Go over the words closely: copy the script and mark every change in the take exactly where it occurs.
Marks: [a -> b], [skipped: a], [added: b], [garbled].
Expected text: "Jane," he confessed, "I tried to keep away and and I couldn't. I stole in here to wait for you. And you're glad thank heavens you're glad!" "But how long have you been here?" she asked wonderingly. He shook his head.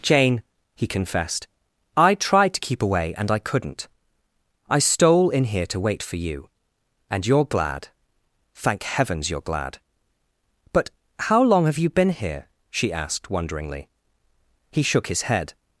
"Jane," he confessed, "I tried to keep away and [skipped: and] I couldn't. I stole in here to wait for you. And you're glad thank heavens you're glad!" "But how long have you been here?" she asked wonderingly. He shook his head.